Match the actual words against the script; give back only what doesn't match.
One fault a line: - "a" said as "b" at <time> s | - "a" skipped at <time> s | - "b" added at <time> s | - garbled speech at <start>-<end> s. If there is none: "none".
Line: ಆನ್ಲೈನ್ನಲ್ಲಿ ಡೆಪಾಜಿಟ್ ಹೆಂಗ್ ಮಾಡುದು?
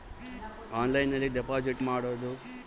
- "ಹೆಂಗ್" skipped at 1.8 s